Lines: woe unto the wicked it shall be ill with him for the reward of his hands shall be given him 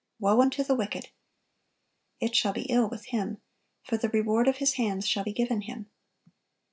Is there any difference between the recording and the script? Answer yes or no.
no